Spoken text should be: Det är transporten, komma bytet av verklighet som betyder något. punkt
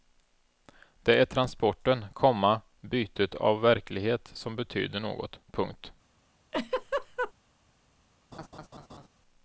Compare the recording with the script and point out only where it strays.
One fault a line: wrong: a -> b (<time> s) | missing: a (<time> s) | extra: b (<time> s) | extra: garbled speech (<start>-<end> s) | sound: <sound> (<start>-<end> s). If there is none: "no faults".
sound: laugh (6.5-7.3 s)
sound: laugh (8.3-9.1 s)